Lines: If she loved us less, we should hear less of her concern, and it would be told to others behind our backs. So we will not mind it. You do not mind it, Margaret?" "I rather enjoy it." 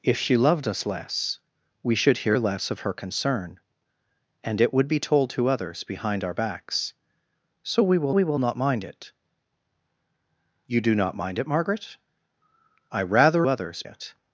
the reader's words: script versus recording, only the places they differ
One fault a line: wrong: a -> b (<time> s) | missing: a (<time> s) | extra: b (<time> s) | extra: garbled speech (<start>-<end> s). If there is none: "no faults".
extra: we will (8.1 s)
wrong: enjoy -> others (13.5 s)